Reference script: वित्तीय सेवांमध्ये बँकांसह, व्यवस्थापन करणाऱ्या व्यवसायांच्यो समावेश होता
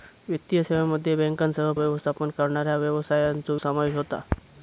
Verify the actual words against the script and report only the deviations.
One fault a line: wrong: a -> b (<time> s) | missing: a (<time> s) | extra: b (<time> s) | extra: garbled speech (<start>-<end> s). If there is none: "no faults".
no faults